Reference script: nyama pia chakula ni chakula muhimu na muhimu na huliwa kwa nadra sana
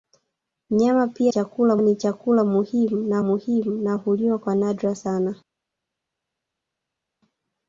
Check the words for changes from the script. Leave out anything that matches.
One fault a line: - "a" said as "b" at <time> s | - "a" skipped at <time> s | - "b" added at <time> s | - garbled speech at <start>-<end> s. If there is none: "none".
none